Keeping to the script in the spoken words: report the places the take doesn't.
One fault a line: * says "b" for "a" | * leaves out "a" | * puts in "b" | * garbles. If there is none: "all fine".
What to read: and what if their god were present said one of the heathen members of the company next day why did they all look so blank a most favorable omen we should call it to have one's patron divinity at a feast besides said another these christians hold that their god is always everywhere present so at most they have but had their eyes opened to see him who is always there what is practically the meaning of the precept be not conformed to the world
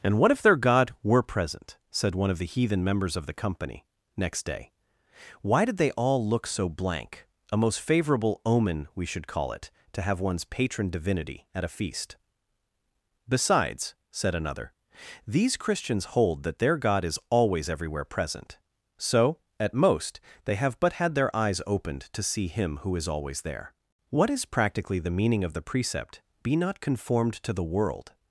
all fine